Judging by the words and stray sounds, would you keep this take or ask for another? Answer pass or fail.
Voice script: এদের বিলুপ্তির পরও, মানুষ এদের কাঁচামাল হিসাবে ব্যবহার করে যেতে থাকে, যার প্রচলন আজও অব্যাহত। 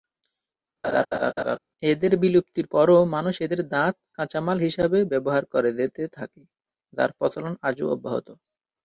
fail